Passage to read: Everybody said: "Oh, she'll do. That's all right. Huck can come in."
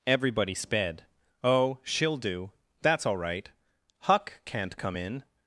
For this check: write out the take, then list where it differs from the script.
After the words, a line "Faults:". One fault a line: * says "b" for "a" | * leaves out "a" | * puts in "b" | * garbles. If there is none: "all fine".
Everybody sped: "Oh, she'll do. That's all right. Huck can't come in."
Faults:
* says "sped" for "said"
* says "can't" for "can"